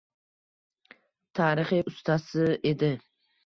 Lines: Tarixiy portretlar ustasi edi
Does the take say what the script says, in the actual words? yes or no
no